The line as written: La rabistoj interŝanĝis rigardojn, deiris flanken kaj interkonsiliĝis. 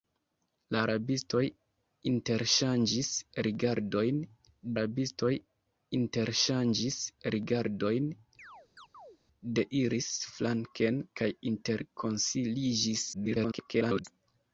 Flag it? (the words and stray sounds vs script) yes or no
yes